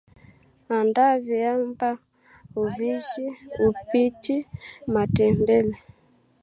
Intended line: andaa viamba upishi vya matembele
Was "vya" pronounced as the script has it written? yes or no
no